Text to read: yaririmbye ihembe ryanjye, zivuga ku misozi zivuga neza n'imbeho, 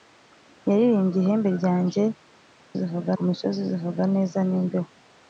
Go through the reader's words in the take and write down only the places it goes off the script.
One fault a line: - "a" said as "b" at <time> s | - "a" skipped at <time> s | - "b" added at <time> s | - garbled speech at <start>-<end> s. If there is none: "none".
none